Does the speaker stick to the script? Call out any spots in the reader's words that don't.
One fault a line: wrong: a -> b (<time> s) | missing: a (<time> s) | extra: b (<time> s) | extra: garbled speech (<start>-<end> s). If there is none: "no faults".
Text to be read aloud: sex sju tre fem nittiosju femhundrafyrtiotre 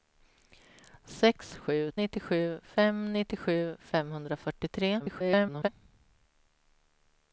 wrong: tre -> nittiosju (2.0 s)
extra: garbled speech (5.0-5.7 s)